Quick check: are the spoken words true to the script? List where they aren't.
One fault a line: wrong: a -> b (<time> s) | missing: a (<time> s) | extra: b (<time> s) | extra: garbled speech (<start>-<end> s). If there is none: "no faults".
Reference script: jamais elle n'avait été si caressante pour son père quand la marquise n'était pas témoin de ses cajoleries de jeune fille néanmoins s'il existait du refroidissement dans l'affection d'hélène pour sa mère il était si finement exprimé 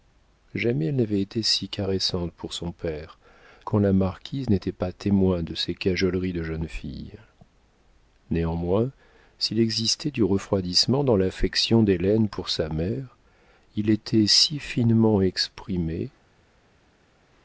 no faults